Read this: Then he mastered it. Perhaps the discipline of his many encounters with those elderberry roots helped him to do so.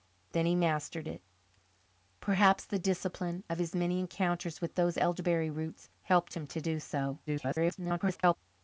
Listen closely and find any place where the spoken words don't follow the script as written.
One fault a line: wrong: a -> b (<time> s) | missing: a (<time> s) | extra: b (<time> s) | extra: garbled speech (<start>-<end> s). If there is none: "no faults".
extra: garbled speech (7.3-8.4 s)